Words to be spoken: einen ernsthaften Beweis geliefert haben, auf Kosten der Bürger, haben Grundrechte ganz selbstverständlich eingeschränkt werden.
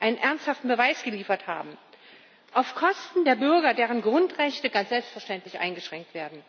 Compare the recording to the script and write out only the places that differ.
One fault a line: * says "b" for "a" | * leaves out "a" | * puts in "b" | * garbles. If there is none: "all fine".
* says "deren" for "haben"